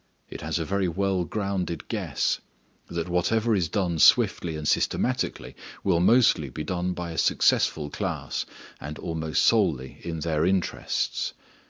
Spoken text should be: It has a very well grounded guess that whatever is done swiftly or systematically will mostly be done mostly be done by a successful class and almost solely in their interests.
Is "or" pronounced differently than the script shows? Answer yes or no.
yes